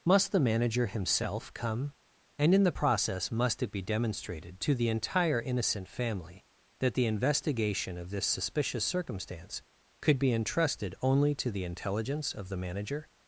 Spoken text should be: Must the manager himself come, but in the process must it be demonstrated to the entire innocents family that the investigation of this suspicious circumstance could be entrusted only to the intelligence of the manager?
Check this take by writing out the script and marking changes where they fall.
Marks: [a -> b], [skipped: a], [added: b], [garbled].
Must the manager himself come, [but -> and] in the process must it be demonstrated to the entire [innocents -> innocent] family that the investigation of this suspicious circumstance could be entrusted only to the intelligence of the manager?